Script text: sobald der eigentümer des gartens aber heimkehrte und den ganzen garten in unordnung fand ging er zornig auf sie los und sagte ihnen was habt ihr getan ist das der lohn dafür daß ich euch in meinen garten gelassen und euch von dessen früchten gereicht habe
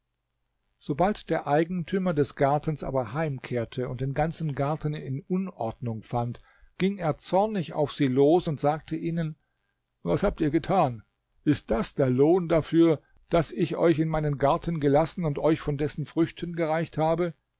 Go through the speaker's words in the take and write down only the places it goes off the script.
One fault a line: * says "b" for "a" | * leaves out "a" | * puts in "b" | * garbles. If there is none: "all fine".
all fine